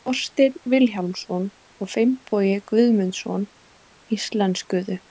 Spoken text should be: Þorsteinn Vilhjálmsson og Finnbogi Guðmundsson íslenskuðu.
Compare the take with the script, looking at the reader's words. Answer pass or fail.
pass